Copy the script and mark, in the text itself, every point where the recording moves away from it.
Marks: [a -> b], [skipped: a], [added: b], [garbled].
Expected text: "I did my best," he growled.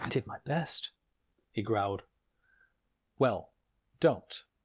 "I did my best," he growled. [added: Well don't]